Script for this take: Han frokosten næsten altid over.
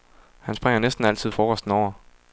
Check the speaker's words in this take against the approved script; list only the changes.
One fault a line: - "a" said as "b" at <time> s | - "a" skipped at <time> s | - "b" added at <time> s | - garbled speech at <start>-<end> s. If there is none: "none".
- "frokosten" said as "springer" at 0.5 s
- "frokosten" added at 1.3 s